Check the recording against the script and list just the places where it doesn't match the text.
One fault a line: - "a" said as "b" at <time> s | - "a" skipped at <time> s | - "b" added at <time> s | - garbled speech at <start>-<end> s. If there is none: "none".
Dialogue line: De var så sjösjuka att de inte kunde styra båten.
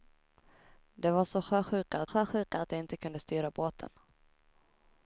- "sjösjuka att" added at 2.0 s